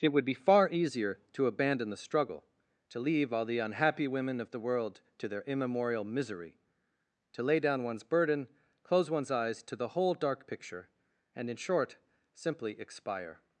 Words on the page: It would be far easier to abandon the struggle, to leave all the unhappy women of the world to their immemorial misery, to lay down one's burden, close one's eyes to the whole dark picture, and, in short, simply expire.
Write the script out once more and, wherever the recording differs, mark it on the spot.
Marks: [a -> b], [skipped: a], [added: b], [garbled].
It would be far easier to abandon the struggle, to leave all the unhappy women of the world to their immemorial misery, to lay down one's burden, close one's eyes to the whole dark picture, and, in short, simply expire.